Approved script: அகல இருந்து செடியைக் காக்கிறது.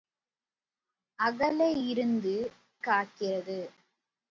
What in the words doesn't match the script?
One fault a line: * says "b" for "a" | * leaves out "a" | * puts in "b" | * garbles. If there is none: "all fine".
* leaves out "செடியைக்"